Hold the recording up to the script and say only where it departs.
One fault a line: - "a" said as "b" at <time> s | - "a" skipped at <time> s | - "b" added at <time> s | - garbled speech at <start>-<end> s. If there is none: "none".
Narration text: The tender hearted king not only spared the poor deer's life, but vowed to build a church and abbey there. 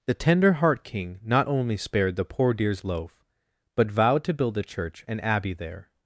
- "hearted" said as "heart" at 0.5 s
- "life" said as "loaf" at 2.8 s